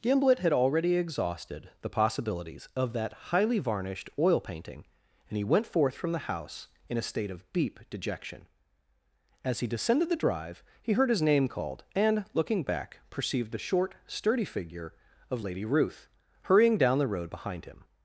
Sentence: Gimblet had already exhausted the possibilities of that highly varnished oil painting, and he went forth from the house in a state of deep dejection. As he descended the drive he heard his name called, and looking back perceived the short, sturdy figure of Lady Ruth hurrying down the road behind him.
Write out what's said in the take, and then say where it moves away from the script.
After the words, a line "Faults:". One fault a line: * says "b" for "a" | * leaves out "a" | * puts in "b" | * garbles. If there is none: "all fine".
Gimblet had already exhausted the possibilities of that highly varnished oil painting, and he went forth from the house in a state of deep dejection. As he descended the drive he heard his name called, and looking back perceived the short, sturdy figure of Lady Ruth hurrying down the road behind him.
Faults:
all fine